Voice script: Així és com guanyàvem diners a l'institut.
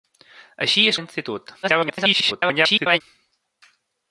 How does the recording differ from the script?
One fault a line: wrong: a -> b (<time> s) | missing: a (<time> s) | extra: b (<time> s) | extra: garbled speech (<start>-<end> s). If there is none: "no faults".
missing: com guanyàvem diners (1.0 s)
extra: garbled speech (1.6-3.0 s)